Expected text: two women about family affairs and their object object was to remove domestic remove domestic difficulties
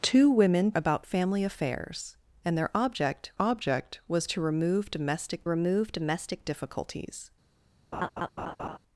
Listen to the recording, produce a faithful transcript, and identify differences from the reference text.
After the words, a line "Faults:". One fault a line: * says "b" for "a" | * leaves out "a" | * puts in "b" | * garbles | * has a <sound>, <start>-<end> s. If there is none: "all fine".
two women about family affairs and their object object was to remove domestic remove domestic difficulties
Faults:
* has a laugh, 7.9-8.8 s